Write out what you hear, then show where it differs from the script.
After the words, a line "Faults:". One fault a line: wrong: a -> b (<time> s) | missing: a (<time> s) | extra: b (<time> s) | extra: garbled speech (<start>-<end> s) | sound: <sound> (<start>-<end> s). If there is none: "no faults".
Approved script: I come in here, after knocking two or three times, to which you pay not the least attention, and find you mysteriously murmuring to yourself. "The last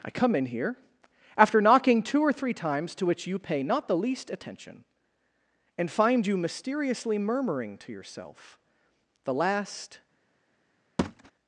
I come in here, after knocking two or three times, to which you pay not the least attention, and find you mysteriously murmuring to yourself. "The last
Faults:
sound: thud (11.0-11.3 s)